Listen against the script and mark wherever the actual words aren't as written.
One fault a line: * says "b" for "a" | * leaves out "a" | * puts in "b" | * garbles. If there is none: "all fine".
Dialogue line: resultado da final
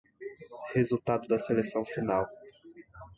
* puts in "seleção"